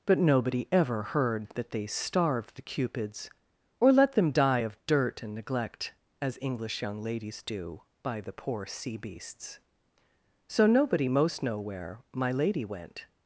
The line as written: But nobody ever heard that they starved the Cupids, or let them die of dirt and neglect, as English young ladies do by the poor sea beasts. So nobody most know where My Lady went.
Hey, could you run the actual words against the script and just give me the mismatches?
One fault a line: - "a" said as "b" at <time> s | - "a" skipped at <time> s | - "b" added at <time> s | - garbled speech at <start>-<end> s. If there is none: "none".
none